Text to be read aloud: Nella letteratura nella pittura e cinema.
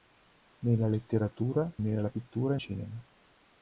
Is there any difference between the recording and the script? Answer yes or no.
no